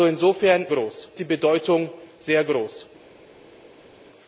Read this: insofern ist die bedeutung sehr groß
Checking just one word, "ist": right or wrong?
wrong